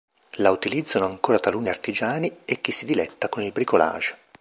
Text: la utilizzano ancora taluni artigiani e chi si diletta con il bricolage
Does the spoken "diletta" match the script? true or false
true